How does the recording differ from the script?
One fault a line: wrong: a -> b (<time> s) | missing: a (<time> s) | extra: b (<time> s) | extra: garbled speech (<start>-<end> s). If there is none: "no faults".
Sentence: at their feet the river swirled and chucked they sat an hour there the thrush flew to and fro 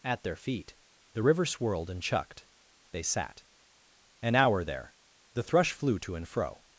no faults